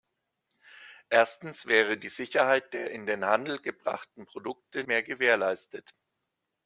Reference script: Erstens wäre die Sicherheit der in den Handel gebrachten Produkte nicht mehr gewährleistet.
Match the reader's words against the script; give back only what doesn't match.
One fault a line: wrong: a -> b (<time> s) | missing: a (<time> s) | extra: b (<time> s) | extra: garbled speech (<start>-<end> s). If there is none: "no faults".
missing: nicht (4.8 s)